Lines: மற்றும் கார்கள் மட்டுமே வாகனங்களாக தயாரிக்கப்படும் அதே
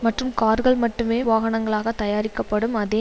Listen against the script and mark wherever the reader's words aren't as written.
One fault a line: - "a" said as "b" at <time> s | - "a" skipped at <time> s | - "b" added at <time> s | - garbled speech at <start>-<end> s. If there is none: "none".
none